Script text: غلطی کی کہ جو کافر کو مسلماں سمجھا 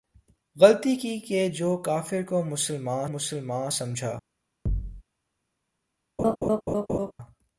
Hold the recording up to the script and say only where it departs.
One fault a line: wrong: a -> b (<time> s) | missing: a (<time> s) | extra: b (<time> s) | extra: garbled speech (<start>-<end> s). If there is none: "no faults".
extra: مسلماں (3.1 s)